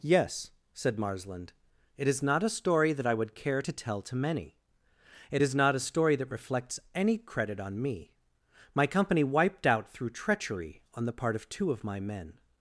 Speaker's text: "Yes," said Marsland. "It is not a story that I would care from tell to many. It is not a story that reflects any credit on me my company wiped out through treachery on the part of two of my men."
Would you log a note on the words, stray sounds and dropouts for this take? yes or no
yes